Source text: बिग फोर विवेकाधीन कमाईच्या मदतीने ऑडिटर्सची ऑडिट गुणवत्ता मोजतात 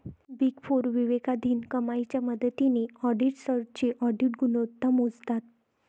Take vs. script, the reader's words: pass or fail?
pass